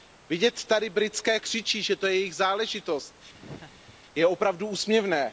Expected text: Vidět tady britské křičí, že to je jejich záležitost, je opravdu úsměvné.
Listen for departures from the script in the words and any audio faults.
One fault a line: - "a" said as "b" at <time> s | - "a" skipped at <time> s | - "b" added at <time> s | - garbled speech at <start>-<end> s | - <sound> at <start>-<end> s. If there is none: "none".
- laugh at 3.3-4.0 s